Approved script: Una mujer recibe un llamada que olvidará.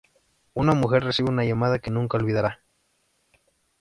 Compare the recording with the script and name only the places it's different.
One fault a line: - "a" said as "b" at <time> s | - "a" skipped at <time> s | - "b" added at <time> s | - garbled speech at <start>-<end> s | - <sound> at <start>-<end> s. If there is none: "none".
- "un" said as "una" at 1.3 s
- "nunca" added at 1.9 s